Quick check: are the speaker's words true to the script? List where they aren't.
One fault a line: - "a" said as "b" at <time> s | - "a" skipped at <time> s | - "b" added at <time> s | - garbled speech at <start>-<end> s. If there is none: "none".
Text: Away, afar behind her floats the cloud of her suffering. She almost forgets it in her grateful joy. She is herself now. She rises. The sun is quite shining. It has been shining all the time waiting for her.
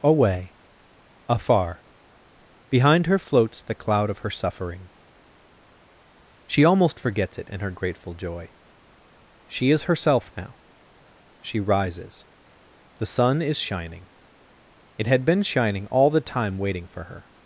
- "quite" skipped at 13.6 s
- "has" said as "had" at 15.1 s